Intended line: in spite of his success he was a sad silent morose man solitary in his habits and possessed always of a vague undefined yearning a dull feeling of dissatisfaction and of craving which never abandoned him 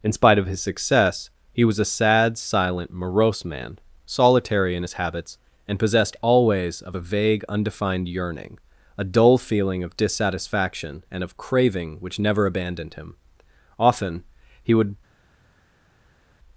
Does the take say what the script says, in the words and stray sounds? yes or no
no